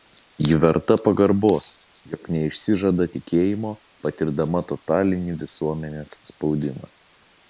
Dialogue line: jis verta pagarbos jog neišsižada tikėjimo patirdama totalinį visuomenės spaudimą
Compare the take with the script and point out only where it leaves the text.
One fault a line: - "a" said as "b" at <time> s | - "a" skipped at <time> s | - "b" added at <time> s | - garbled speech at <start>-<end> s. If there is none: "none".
- "jis" said as "ji" at 0.5 s